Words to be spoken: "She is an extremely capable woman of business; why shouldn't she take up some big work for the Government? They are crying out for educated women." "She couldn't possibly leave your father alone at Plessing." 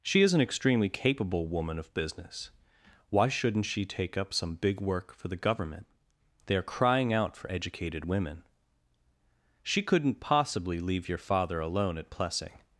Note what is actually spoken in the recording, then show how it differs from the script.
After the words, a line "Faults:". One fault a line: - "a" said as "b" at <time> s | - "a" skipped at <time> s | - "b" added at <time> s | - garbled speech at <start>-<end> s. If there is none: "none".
"She is an extremely capable woman of business; why shouldn't she take up some big work for the Government? They are crying out for educated women." "She couldn't possibly leave your father alone at Plessing."
Faults:
none